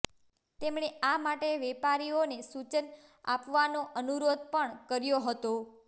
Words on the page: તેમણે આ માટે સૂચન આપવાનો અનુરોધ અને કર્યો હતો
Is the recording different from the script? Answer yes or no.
yes